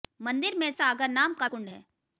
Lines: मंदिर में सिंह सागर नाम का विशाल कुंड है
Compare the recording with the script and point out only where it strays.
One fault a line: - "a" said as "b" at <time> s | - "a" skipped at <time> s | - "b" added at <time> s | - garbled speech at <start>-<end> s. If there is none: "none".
- "सिंह" skipped at 0.7 s
- "विशाल" skipped at 1.5 s